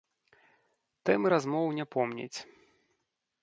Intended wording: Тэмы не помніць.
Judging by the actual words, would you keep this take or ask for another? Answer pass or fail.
fail